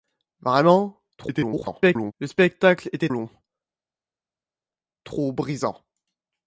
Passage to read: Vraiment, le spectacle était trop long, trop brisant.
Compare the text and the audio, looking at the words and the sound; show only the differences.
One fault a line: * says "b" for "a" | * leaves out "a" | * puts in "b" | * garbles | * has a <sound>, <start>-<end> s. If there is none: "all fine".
* garbles
* leaves out "trop"